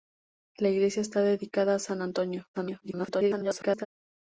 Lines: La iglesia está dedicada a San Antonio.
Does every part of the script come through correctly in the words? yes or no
no